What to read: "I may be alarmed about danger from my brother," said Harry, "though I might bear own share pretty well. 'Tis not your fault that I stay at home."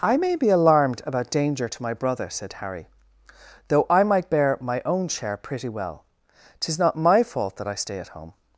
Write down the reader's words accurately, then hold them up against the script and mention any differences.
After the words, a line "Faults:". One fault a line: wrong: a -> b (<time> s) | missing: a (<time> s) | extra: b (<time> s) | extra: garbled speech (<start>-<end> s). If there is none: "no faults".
"I may be alarmed about danger to my brother," said Harry, "though I might bear my own share pretty well. 'Tis not my fault that I stay at home."
Faults:
wrong: from -> to (1.7 s)
extra: my (4.6 s)
wrong: your -> my (6.9 s)